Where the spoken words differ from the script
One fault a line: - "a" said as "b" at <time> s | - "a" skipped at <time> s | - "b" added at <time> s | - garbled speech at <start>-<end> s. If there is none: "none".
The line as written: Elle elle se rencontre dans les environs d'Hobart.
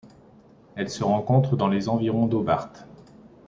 - "elle" skipped at 0.9 s